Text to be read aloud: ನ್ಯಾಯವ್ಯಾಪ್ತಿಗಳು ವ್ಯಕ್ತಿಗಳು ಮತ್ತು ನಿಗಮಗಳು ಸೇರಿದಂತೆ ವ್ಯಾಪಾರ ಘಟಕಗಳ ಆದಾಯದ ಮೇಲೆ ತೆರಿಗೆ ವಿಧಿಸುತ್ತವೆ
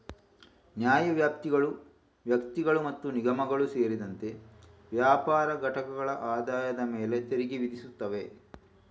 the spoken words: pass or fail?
pass